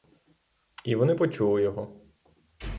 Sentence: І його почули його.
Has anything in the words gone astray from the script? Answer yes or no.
yes